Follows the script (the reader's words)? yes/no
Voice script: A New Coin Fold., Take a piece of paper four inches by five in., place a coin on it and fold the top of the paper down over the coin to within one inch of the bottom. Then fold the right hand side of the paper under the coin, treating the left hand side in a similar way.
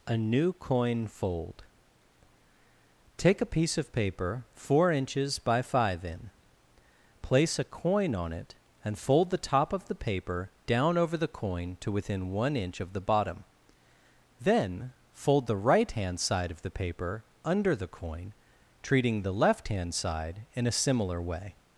yes